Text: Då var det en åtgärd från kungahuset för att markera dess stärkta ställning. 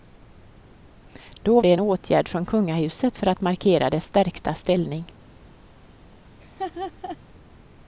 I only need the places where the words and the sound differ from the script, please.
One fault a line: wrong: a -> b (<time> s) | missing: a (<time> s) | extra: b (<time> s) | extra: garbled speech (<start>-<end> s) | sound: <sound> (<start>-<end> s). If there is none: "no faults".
missing: var (1.6 s)
sound: laugh (6.4-7.2 s)